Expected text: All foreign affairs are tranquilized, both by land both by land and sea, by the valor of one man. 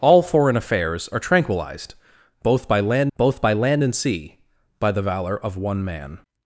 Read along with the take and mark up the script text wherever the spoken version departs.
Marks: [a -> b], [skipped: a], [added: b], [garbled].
All foreign affairs are tranquilized, both by land both by land and sea, by the valor of one man.